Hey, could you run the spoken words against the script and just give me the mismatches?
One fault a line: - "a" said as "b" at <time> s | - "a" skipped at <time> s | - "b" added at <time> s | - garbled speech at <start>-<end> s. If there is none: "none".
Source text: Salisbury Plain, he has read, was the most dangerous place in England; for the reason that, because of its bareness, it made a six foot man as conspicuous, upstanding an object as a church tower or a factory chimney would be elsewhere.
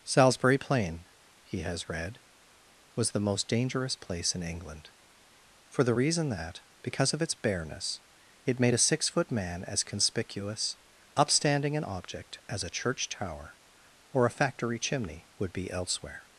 none